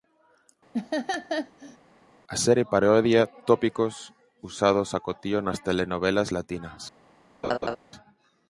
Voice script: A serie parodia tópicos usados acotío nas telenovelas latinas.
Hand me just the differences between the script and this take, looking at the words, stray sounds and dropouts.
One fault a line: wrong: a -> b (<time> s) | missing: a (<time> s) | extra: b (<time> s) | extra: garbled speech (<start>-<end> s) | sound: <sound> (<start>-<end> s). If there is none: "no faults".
sound: laugh (0.7-1.8 s)
sound: laugh (7.4-7.8 s)